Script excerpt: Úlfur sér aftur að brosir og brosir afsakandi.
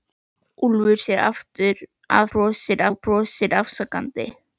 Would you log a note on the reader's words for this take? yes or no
no